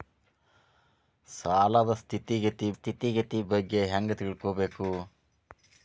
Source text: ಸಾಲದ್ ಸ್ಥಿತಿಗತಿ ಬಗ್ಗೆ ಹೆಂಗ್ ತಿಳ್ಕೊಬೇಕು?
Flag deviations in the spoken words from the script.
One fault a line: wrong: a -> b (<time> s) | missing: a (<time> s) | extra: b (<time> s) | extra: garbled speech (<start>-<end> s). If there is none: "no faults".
extra: ಸ್ಥಿತಿಗತಿ (2.7 s)